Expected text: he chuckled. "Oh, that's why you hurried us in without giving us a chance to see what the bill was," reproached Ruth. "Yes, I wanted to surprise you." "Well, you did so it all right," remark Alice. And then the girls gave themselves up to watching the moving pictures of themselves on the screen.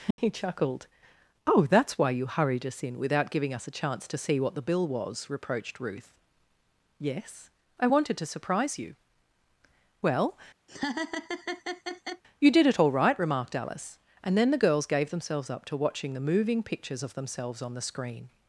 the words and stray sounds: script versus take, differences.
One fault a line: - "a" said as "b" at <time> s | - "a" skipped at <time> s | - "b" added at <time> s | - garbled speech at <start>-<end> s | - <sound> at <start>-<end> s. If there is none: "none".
- dropout at 0.1-0.2 s
- laugh at 10.7-12.2 s
- "so" skipped at 12.7 s
- "remark" said as "remarked" at 13.2 s